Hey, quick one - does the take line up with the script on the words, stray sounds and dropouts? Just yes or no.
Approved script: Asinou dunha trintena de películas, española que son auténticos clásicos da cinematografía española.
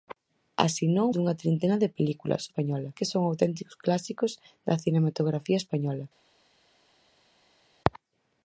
yes